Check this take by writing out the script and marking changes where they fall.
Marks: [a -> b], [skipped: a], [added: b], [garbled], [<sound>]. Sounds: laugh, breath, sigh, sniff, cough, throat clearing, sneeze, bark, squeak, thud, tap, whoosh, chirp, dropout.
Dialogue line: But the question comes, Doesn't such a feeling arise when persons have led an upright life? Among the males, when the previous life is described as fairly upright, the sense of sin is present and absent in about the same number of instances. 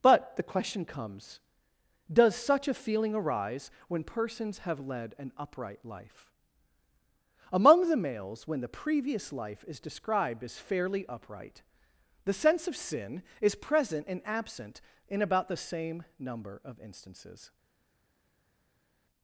But the question comes, [Doesn't -> Does] such a feeling arise when persons have led an upright life? Among the males, when the previous life is described as fairly upright, the sense of sin is present and absent in about the same number of instances.